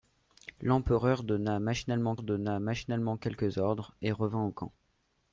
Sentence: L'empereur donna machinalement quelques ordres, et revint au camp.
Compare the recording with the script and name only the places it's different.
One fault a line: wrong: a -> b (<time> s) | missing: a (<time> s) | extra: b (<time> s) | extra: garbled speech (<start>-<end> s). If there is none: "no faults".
extra: donna machinalement (2.2 s)